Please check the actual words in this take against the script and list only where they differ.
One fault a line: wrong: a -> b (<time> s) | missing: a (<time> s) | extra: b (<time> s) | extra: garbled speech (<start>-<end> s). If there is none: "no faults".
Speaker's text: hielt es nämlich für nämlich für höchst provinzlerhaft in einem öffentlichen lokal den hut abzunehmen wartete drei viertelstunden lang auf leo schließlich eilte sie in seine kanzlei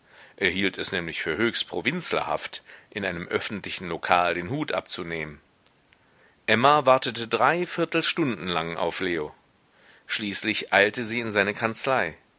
missing: nämlich für (1.4 s)
extra: emma (6.5 s)